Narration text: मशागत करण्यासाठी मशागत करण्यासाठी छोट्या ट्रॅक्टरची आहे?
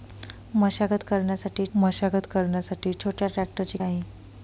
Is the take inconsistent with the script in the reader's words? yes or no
no